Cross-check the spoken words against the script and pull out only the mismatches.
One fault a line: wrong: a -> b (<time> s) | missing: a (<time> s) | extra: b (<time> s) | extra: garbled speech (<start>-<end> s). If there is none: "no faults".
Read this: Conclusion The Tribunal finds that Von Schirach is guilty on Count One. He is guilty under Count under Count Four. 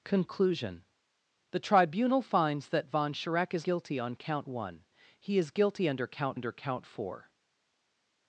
no faults